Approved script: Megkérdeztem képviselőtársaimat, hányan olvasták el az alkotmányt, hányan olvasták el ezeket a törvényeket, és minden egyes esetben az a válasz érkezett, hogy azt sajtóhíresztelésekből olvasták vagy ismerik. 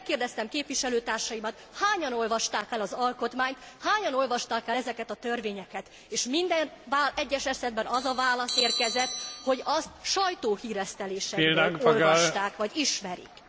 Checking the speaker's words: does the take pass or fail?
pass